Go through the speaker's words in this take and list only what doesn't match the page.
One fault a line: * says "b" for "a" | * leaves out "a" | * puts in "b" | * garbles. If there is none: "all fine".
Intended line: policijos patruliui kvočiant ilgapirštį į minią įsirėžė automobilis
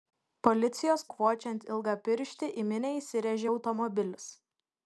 * leaves out "patruliui"